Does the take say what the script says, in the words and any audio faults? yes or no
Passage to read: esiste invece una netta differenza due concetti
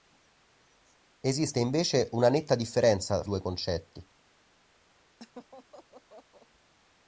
no